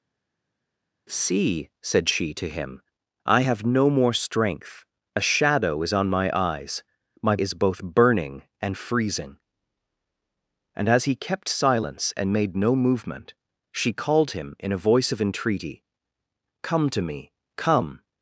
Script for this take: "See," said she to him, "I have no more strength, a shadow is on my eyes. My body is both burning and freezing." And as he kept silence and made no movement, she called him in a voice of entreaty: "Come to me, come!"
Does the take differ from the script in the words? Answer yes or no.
yes